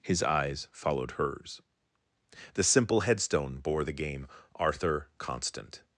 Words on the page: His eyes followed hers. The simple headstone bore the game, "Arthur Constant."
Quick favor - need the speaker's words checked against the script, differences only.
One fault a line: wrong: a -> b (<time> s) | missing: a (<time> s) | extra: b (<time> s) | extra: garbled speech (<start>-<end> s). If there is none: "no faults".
no faults